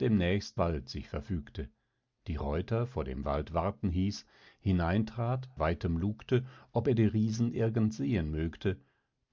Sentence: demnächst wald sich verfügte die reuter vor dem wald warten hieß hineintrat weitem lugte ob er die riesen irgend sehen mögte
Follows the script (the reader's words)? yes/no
yes